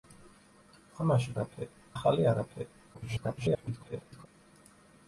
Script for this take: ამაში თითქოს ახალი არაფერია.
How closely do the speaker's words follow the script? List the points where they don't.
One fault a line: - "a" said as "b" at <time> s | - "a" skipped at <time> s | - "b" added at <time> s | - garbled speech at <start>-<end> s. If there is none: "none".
- "თითქოს" said as "არაფერია" at 1.4 s
- garbled speech at 2.9-4.3 s